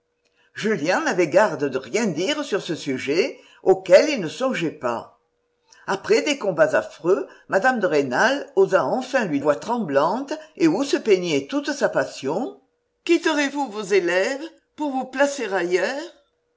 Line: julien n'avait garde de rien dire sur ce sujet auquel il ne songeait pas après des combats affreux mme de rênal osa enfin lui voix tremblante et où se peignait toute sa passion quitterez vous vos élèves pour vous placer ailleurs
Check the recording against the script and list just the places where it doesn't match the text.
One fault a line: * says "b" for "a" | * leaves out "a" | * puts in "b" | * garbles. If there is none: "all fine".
all fine